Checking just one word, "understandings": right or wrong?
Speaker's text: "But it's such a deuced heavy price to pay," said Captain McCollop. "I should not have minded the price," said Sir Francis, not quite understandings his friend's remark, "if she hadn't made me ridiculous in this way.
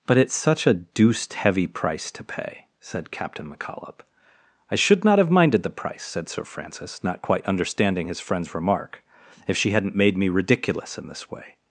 wrong